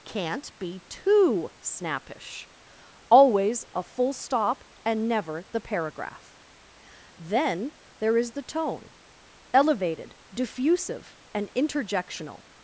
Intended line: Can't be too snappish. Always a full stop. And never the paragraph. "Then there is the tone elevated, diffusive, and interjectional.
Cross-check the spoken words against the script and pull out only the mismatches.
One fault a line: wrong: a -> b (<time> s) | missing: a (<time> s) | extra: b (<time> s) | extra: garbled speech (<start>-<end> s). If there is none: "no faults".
no faults